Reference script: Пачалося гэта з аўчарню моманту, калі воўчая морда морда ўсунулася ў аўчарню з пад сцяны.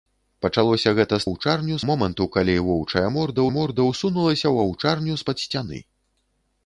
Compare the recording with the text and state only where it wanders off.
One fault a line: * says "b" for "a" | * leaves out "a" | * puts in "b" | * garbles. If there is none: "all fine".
all fine